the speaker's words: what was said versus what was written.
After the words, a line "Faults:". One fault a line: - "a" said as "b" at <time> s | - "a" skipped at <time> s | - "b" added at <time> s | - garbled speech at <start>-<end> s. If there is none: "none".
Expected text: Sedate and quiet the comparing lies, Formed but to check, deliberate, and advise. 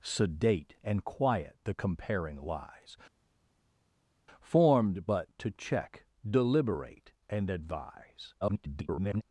Sedate and quiet the comparing lies, Formed but to check, deliberate, and advise. [garbled]
Faults:
- garbled speech at 8.4-9.2 s